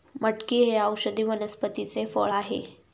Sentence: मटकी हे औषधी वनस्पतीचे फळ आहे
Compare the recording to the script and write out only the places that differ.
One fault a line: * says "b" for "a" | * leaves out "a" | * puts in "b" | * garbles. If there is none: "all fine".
all fine